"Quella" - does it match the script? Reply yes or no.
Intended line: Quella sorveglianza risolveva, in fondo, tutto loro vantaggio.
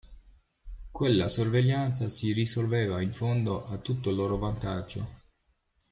yes